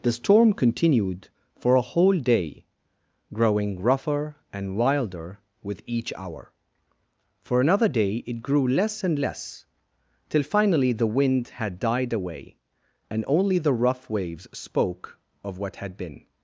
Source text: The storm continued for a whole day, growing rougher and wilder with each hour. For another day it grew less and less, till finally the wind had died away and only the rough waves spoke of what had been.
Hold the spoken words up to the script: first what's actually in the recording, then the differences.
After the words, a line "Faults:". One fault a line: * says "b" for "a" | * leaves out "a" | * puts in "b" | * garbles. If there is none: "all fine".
The storm continued for a whole day, growing rougher and wilder with each hour. For another day it grew less and less, till finally the wind had died away and only the rough waves spoke of what had been.
Faults:
all fine